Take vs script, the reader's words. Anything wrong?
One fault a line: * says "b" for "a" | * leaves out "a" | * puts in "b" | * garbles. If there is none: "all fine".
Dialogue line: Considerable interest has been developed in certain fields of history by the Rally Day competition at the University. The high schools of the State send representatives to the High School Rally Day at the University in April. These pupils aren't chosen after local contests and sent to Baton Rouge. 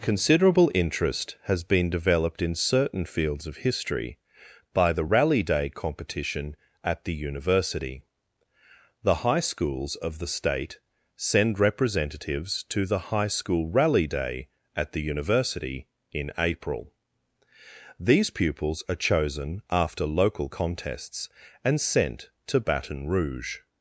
* says "are" for "aren't"